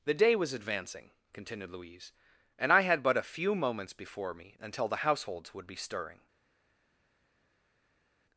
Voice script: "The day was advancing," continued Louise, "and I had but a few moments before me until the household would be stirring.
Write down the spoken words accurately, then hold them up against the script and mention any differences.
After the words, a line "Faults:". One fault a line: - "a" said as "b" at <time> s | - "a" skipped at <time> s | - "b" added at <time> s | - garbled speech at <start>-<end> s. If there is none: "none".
"The day was advancing," continued Louise, "and I had but a few moments before me until the households would be stirring.
Faults:
- "household" said as "households" at 5.0 s